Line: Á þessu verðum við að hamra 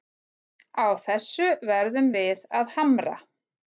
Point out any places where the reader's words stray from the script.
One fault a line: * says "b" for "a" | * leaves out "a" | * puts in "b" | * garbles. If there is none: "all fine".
all fine